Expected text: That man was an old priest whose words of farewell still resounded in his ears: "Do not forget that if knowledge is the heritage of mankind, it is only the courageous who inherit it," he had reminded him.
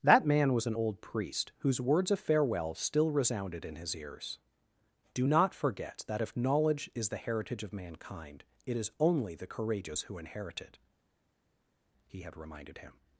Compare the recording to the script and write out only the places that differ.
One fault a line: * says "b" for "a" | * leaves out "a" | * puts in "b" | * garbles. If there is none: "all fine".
all fine